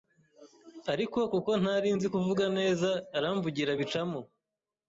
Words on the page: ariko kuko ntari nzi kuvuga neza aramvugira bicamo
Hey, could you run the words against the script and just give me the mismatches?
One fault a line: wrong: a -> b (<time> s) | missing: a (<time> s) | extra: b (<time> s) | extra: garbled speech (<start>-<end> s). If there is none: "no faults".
no faults